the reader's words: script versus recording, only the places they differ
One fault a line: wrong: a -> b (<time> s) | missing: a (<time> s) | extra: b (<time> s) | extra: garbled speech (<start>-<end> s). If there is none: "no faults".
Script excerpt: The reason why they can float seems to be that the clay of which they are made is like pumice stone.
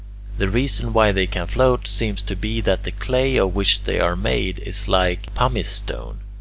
no faults